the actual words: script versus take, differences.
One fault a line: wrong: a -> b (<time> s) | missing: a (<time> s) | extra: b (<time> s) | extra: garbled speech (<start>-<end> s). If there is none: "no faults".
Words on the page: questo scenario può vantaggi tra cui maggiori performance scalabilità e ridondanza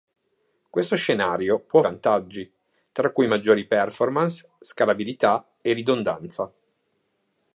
no faults